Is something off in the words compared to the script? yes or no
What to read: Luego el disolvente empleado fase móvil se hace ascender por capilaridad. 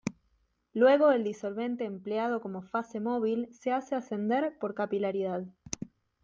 yes